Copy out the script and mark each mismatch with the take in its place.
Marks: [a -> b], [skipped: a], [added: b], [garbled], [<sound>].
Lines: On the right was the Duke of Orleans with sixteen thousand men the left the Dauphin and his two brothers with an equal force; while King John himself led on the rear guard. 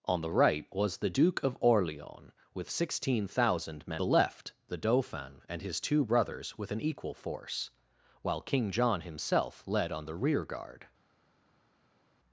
On the right was the Duke of Orleans with sixteen thousand men the left the Dauphin and his two brothers with an equal force; while King John himself led on the rear guard.